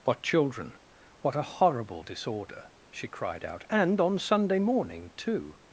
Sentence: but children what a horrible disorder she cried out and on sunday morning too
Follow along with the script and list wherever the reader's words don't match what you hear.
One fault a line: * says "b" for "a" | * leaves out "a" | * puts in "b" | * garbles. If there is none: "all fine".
all fine